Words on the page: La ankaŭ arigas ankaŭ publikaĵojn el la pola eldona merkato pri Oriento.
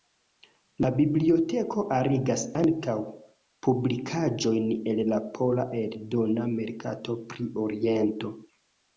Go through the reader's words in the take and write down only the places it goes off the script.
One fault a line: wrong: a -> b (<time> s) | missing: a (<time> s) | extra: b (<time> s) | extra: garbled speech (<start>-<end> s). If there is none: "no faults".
wrong: ankaŭ -> biblioteko (1.0 s)